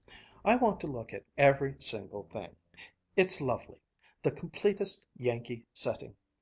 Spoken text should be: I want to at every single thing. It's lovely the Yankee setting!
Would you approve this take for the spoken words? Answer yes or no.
no